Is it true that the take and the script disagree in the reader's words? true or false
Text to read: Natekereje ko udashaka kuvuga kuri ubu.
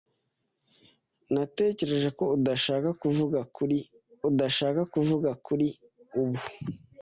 true